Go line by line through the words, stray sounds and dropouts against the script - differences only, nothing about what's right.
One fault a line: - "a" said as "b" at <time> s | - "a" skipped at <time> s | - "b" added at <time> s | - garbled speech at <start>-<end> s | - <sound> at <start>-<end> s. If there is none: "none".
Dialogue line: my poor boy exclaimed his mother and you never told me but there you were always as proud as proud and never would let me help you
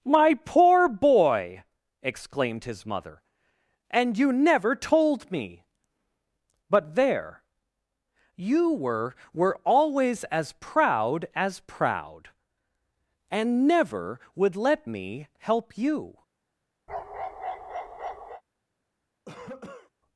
- "were" added at 9.3 s
- bark at 16.9-18.4 s
- cough at 19.3-19.9 s